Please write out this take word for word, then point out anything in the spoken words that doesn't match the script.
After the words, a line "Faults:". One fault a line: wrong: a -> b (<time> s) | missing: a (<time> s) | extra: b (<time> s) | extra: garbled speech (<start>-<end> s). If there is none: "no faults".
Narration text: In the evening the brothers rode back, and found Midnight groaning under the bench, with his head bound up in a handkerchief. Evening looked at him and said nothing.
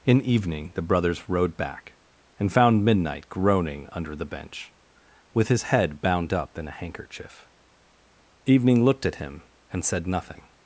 In evening the brothers rode back, and found Midnight groaning under the bench, with his head bound up in a handkerchief. Evening looked at him and said nothing.
Faults:
missing: the (0.2 s)